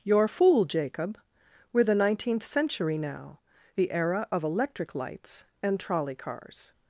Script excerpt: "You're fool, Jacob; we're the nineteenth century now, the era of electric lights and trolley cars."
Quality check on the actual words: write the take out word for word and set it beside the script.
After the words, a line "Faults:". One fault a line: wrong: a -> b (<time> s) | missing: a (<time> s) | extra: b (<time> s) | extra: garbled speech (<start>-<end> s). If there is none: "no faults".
"You're fool, Jacob; we're the nineteenth century now, the era of electric lights and trolley cars."
Faults:
no faults